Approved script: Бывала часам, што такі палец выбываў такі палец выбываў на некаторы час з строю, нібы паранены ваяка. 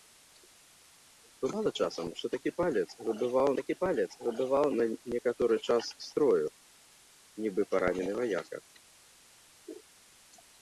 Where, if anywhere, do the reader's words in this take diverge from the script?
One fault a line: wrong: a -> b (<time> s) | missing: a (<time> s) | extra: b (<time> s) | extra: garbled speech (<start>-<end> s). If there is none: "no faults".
no faults